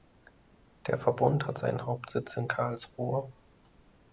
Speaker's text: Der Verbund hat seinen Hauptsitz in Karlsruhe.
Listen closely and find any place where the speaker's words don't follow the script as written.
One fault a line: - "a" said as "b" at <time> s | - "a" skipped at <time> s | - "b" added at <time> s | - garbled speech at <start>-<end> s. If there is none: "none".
none